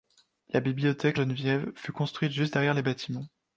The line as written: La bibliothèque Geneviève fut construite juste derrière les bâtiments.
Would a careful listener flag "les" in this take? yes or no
no